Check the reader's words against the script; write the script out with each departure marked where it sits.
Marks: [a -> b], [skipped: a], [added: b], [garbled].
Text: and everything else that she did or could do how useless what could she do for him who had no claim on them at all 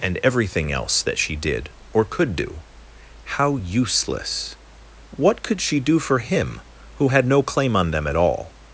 and everything else that she did or could do how useless what could she do for him who had no claim on them at all